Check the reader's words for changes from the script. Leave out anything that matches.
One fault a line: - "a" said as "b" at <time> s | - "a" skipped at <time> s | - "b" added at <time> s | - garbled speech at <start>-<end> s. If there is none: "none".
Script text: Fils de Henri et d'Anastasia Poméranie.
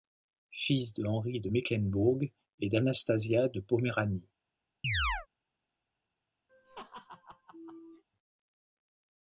- "de Mecklembourg" added at 1.4 s
- "de" added at 3.5 s